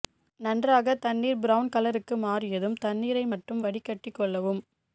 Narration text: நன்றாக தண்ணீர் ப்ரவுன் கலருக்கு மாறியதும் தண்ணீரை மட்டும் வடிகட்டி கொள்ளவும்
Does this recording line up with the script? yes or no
yes